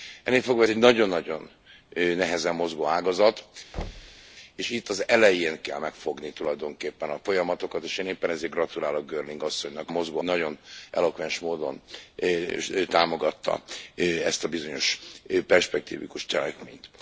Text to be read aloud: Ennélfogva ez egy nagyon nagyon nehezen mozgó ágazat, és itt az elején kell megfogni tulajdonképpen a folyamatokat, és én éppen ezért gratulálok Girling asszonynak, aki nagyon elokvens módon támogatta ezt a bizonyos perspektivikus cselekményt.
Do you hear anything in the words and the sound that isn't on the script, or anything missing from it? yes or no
yes